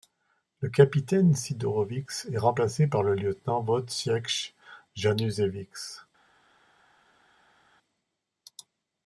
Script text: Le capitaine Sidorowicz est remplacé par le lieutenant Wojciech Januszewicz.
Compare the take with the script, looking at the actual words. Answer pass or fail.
pass